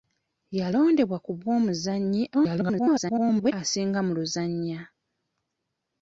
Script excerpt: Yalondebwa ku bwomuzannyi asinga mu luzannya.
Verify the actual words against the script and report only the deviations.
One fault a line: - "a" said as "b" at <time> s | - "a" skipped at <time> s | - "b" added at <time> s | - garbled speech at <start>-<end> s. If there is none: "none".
- garbled speech at 2.3-3.5 s